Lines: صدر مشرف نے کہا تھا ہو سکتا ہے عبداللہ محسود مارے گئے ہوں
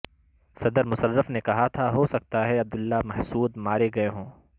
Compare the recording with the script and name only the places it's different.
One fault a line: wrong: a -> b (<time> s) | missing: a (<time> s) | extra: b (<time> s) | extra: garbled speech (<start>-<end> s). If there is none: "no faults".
no faults